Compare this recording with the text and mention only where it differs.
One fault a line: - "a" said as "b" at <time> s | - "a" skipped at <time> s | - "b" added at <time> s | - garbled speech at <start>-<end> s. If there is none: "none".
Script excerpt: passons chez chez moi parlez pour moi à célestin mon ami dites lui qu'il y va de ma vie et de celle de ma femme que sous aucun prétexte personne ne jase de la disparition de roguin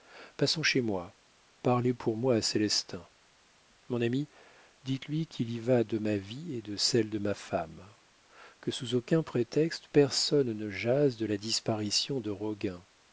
- "chez" skipped at 0.8 s